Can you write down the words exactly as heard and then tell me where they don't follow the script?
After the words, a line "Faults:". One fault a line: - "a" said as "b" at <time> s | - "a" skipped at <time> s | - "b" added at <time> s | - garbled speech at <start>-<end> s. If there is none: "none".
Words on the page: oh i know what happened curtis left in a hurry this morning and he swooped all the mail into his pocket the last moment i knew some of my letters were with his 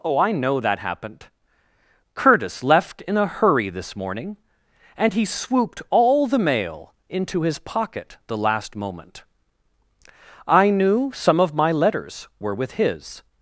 oh i know that happened curtis left in a hurry this morning and he swooped all the mail into his pocket the last moment i knew some of my letters were with his
Faults:
- "what" said as "that" at 0.6 s